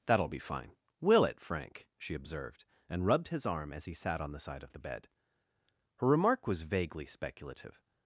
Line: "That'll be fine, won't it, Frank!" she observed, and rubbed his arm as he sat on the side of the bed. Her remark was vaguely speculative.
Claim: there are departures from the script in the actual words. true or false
true